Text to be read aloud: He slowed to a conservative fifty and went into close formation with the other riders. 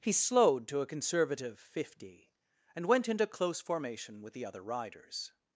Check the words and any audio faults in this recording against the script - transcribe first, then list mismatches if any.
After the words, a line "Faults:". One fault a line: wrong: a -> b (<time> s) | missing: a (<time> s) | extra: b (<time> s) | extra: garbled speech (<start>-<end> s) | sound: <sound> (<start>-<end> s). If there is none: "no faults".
He slowed to a conservative fifty and went into close formation with the other riders.
Faults:
no faults